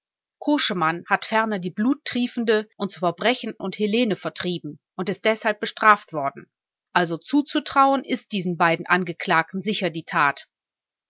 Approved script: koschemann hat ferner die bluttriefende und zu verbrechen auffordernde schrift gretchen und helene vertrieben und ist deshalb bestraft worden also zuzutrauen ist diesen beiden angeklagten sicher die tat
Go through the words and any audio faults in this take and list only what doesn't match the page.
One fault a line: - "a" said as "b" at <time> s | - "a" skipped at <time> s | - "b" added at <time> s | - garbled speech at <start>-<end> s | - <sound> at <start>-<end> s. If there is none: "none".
- "auffordernde schrift gretchen" skipped at 3.5 s